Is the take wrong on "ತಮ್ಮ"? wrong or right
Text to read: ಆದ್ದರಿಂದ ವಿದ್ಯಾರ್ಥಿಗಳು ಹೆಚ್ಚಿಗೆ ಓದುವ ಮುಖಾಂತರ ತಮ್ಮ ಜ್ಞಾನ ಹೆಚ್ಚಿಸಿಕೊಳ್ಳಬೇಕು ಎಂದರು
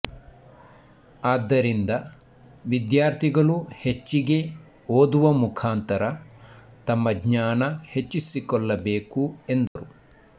right